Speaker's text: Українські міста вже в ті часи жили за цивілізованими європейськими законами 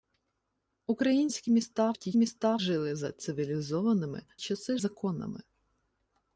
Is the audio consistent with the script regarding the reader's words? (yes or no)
no